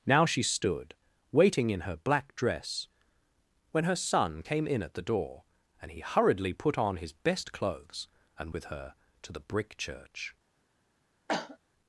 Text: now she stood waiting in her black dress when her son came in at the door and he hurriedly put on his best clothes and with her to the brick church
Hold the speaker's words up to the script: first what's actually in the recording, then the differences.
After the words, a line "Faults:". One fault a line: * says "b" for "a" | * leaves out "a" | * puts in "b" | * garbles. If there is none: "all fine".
now she stood waiting in her black dress when her son came in at the door and he hurriedly put on his best clothes and with her to the brick church
Faults:
all fine